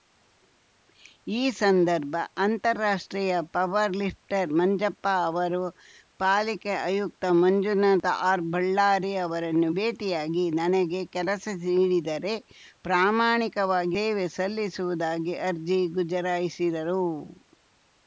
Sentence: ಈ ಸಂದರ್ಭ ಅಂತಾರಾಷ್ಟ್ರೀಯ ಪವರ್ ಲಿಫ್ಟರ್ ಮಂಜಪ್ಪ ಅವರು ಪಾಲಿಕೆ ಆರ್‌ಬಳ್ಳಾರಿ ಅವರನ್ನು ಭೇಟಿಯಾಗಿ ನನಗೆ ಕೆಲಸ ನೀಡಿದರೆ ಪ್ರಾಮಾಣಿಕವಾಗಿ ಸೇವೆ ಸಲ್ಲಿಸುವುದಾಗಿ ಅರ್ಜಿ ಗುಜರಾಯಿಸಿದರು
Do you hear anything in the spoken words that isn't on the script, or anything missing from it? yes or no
yes